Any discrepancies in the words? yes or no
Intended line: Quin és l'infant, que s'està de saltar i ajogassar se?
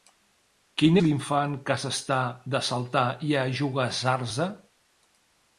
yes